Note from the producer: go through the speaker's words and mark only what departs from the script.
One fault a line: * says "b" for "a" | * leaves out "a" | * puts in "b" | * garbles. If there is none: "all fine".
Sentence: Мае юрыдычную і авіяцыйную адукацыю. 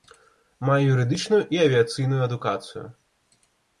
all fine